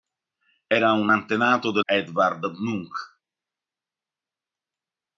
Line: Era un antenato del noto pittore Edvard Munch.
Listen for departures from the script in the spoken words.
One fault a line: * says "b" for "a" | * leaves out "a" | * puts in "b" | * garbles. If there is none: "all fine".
* leaves out "noto pittore"